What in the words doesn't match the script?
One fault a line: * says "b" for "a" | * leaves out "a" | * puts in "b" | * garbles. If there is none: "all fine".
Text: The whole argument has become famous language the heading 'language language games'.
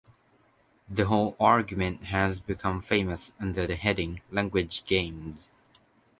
* says "under" for "language"
* leaves out "language"